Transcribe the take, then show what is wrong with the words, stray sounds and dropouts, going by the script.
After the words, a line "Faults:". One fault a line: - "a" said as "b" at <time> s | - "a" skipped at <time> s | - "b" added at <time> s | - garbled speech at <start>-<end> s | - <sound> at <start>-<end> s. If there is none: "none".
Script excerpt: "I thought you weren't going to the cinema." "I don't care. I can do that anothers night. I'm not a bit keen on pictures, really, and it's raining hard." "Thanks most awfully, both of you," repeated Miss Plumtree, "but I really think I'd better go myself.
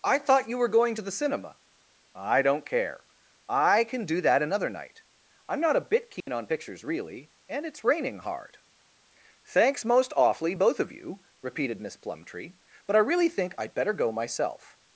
"I thought you were going to the cinema." "I don't care. I can do that another night. I'm not a bit keen on pictures, really, and it's raining hard." "Thanks most awfully, both of you," repeated Miss Plumtree, "but I really think I'd better go myself.
Faults:
- "weren't" said as "were" at 0.6 s
- "anothers" said as "another" at 4.4 s
- dropout at 6.2-6.3 s